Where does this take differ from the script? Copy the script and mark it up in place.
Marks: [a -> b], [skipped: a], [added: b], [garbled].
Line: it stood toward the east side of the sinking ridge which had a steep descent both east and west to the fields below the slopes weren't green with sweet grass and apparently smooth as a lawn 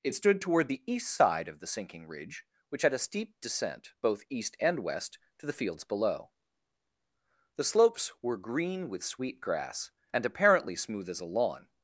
it stood toward the east side of the sinking ridge which had a steep descent both east and west to the fields below the slopes [weren't -> were] green with sweet grass and apparently smooth as a lawn